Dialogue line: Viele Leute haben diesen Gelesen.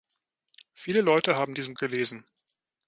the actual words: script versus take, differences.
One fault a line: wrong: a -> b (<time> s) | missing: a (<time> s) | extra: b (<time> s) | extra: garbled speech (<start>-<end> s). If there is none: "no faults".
no faults